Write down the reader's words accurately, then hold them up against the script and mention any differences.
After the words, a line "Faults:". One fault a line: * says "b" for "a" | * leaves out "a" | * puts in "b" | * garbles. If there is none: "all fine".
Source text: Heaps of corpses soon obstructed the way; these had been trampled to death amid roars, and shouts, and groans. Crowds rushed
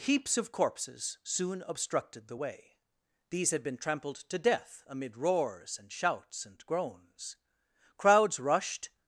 Heaps of corpses soon obstructed the way; these had been trampled to death amid roars, and shouts, and groans. Crowds rushed
Faults:
all fine